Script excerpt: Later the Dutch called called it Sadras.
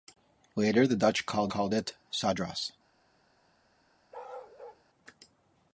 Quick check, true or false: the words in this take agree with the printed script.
true